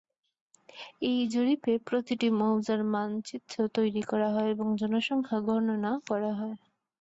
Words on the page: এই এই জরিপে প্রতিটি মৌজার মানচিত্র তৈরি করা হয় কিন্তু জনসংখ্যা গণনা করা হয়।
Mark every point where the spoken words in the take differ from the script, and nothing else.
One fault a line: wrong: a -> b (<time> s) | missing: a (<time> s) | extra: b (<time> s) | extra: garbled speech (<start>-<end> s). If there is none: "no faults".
missing: এই (1.2 s)
wrong: কিন্তু -> এবং (4.5 s)